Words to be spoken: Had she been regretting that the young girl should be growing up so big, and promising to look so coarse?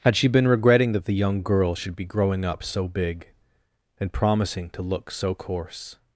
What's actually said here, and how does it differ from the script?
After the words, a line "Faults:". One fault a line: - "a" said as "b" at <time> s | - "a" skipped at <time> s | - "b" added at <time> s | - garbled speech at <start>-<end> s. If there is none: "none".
Had she been regretting that the young girl should be growing up so big, and promising to look so coarse?
Faults:
none